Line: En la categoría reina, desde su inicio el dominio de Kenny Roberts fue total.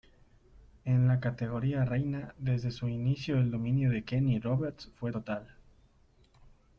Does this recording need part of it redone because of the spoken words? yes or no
no